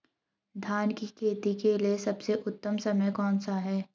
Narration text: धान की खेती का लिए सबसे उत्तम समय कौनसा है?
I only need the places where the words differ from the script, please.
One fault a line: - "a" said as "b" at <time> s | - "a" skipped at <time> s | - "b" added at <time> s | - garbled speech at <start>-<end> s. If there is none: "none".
- "का" said as "के" at 1.6 s